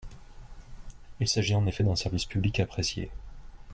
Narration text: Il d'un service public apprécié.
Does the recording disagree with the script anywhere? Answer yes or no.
yes